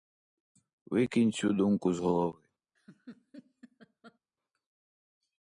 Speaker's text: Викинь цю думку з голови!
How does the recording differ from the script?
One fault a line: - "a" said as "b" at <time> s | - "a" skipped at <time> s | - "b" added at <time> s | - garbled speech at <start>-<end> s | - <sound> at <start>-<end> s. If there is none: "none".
- laugh at 2.7-4.2 s